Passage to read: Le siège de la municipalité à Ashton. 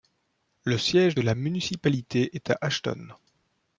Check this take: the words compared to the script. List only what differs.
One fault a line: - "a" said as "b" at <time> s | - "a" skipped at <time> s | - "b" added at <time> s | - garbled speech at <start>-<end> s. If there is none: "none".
- "est" added at 2.3 s